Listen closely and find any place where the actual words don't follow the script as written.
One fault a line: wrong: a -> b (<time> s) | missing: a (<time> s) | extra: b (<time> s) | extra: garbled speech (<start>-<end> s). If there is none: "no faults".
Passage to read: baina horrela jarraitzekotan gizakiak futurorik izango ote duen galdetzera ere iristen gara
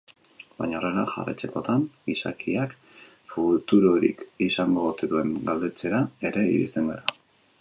no faults